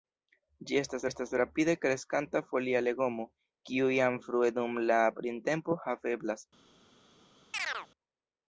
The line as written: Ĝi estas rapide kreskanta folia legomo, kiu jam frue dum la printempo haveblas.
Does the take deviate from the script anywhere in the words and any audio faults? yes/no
yes